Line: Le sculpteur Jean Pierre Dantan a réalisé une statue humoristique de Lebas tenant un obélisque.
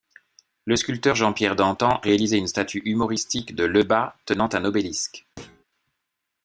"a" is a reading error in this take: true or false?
true